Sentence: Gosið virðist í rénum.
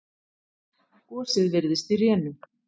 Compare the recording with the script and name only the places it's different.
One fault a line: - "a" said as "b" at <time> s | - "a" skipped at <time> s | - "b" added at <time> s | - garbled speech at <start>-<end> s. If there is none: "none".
none